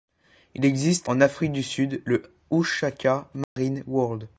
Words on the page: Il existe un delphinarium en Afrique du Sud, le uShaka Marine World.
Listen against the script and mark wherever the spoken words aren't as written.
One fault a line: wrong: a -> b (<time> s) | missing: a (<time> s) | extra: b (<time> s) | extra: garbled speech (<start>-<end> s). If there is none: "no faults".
missing: un delphinarium (1.1 s)